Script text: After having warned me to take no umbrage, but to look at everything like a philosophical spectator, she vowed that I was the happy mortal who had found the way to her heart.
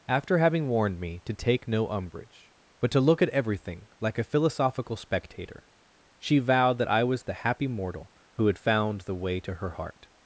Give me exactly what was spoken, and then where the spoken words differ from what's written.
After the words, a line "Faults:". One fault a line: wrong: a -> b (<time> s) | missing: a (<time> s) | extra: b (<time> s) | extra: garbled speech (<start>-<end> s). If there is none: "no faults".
After having warned me to take no umbrage, but to look at everything like a philosophical spectator, she vowed that I was the happy mortal who had found the way to her heart.
Faults:
no faults